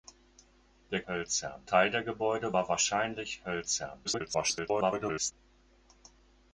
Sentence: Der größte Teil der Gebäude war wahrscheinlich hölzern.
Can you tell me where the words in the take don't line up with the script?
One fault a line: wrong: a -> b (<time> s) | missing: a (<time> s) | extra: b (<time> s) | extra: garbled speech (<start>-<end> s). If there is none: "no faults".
wrong: größte -> hölzern (1.1 s)
extra: garbled speech (4.0-5.3 s)